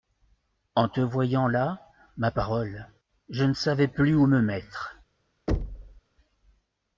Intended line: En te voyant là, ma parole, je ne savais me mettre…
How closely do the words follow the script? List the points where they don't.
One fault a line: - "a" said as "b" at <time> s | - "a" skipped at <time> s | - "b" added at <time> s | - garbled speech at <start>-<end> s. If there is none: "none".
- "plus où" added at 3.9 s